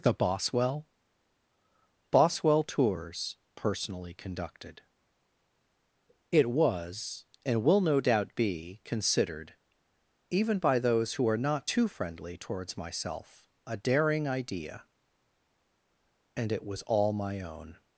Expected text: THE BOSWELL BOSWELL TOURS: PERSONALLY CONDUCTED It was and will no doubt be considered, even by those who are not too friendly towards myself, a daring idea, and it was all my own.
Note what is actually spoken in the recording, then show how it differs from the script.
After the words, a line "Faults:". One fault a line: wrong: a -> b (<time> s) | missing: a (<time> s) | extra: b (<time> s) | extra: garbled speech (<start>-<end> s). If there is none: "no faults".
THE BOSWELL BOSWELL TOURS: PERSONALLY CONDUCTED It was and will no doubt be considered, even by those who are not too friendly towards myself, a daring idea, and it was all my own.
Faults:
no faults